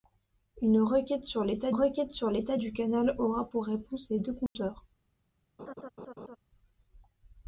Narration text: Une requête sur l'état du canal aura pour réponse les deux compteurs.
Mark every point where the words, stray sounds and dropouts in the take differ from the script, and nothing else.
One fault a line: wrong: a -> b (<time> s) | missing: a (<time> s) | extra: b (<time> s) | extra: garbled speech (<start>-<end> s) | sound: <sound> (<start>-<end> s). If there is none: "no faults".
extra: requête sur l'état (1.7 s)
sound: dropout (4.5-4.6 s)
sound: laugh (5.6-6.4 s)